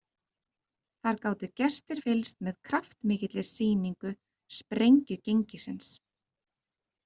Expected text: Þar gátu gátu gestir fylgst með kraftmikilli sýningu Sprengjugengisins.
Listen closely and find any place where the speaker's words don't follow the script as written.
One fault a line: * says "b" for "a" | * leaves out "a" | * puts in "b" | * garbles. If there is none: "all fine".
* leaves out "gátu"